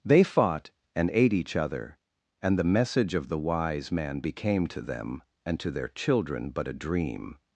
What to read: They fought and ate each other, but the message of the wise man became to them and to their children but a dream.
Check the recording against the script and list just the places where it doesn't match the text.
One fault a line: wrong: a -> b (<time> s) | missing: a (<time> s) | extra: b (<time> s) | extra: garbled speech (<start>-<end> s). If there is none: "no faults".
wrong: but -> and (2.4 s)